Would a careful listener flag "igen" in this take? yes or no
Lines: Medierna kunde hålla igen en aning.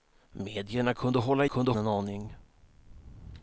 yes